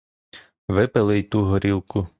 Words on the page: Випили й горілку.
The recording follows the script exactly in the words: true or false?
false